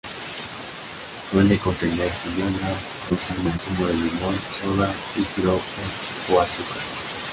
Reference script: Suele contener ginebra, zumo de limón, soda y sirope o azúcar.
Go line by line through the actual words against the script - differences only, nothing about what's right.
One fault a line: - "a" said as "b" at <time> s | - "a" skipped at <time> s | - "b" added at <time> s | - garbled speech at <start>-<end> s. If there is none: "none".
- garbled speech at 3.1-3.6 s